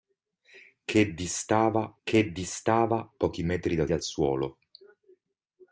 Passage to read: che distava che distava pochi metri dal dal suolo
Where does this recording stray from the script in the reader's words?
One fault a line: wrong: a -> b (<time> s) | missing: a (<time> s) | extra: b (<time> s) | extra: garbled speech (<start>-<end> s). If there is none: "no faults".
no faults